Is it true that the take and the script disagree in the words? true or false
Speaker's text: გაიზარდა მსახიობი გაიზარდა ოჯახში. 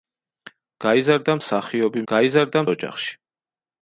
false